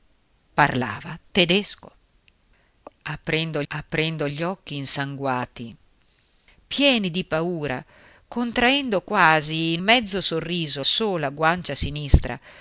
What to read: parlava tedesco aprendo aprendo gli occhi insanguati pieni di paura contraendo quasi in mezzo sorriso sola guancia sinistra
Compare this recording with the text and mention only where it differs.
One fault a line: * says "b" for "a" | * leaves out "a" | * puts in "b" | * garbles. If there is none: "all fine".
all fine